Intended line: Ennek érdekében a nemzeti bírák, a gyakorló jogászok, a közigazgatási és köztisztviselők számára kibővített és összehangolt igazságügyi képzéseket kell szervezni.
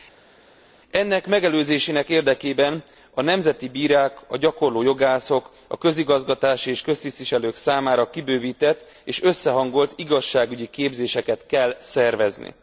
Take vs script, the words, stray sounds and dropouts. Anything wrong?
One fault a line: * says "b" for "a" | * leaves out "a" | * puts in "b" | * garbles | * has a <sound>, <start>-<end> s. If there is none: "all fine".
* puts in "megelőzésének"